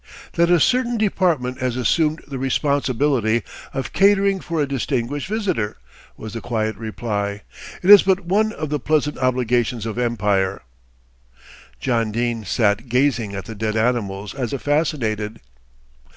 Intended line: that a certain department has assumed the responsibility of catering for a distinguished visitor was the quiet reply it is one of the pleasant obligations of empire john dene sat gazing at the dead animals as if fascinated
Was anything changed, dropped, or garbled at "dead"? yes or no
no